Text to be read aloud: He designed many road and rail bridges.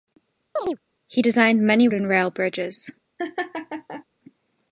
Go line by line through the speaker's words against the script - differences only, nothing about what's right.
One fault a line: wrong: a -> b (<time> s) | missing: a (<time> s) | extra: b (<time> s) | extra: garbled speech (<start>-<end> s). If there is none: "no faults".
missing: road (1.9 s)